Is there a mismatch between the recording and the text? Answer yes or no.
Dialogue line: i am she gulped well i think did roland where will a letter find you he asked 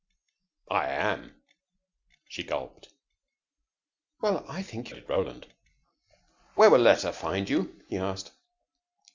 no